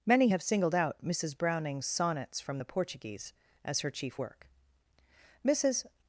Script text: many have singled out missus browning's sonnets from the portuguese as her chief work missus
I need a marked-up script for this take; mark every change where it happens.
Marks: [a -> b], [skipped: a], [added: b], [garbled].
many have singled out missus browning's sonnets from the portuguese as her chief work missus